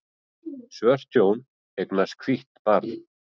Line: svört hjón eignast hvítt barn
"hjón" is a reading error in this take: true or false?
false